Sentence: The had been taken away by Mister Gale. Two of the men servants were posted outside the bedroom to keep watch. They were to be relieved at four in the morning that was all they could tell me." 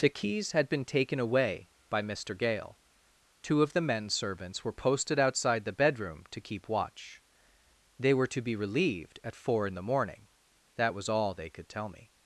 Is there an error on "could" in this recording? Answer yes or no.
no